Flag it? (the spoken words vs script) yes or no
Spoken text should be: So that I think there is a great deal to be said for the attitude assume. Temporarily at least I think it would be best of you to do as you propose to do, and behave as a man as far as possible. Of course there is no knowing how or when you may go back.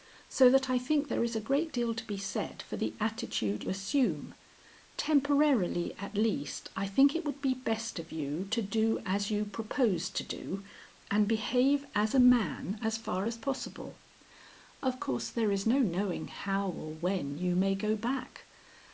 no